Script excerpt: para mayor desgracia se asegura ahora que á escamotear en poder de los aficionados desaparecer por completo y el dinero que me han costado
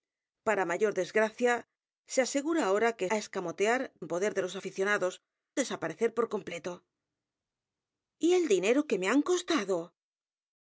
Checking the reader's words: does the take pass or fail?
pass